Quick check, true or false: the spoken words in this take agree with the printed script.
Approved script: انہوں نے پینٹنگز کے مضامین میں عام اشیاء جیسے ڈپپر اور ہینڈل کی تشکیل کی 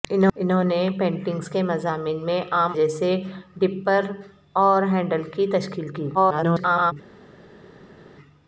false